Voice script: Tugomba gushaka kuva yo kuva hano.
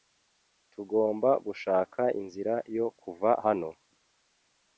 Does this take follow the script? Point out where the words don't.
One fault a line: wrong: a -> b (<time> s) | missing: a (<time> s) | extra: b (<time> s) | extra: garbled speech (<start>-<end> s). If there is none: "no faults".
wrong: kuva -> inzira (2.2 s)